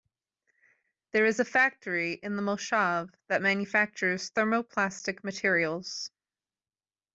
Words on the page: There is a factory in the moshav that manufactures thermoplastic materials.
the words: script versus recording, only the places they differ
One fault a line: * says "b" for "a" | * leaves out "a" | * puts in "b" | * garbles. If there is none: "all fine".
all fine